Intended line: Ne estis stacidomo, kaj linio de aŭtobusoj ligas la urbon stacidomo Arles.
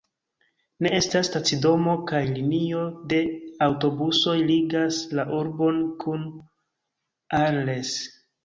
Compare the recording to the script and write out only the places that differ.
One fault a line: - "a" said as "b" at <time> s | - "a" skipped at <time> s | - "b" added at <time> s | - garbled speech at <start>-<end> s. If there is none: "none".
- "estis" said as "estas" at 1.0 s
- "stacidomo" said as "kun" at 6.1 s